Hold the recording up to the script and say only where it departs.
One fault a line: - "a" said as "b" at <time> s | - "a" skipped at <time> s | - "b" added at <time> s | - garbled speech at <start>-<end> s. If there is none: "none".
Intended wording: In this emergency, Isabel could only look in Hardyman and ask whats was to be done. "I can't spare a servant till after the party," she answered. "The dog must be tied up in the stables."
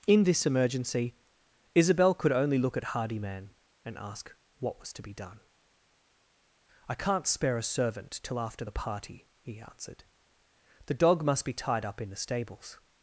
- "in" said as "at" at 2.8 s
- "whats" said as "what" at 4.6 s
- "she" said as "he" at 9.4 s